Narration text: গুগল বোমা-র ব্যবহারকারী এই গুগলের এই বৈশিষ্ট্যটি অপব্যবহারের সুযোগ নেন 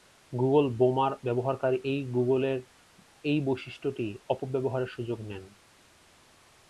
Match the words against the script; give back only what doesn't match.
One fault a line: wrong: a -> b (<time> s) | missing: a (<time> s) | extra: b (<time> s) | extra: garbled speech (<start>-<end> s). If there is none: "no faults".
no faults